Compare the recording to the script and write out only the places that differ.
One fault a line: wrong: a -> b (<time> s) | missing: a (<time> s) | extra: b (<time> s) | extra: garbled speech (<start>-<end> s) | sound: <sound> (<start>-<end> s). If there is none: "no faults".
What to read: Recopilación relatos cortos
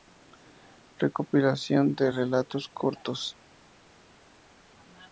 extra: de (1.9 s)